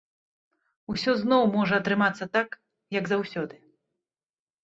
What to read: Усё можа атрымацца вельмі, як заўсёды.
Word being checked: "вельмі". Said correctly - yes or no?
no